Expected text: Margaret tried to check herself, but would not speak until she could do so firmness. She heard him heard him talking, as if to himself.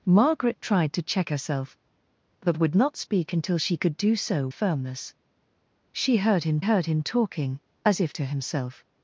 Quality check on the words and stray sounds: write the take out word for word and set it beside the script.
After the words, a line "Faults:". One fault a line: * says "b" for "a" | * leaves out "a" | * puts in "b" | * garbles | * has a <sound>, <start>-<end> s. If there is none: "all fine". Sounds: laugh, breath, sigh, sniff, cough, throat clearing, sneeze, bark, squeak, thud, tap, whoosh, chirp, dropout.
Margaret tried to check herself, but would not speak until she could do so firmness. She heard him heard him talking, as if to himself.
Faults:
all fine